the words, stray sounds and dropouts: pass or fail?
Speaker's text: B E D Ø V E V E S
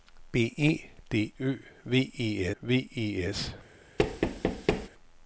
fail